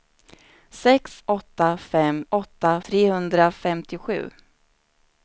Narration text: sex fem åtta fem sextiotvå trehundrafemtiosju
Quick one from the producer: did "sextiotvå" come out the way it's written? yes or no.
no